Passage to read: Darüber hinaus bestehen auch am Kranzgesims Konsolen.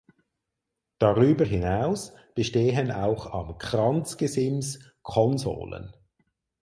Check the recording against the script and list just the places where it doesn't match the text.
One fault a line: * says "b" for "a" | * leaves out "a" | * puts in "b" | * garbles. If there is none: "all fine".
all fine